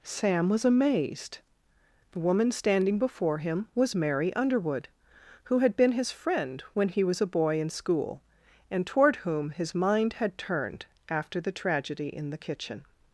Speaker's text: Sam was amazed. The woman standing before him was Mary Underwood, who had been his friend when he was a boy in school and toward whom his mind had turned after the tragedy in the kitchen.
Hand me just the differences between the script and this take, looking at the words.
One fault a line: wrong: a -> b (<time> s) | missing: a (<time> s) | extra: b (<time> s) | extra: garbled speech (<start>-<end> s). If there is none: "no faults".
no faults